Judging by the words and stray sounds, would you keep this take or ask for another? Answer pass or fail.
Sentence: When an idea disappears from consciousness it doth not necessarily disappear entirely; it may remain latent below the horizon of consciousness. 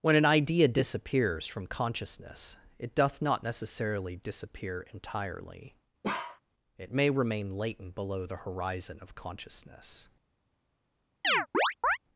fail